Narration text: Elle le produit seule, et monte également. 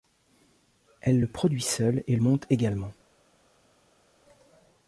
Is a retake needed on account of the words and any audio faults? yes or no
no